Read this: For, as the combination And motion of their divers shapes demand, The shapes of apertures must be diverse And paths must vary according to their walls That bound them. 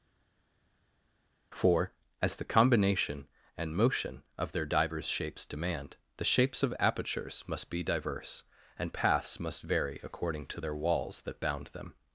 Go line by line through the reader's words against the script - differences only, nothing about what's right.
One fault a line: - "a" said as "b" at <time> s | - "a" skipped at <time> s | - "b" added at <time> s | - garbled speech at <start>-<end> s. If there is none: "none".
none